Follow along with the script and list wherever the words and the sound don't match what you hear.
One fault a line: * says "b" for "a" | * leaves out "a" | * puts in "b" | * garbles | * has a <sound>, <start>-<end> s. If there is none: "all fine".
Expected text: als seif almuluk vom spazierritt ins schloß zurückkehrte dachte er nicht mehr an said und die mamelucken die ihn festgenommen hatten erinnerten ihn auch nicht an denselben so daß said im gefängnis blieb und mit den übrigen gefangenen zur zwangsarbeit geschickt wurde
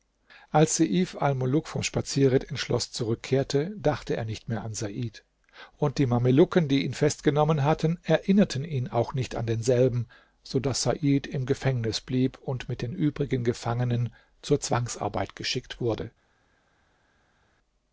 all fine